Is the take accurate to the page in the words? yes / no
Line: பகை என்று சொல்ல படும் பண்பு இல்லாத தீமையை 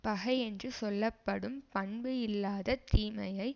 yes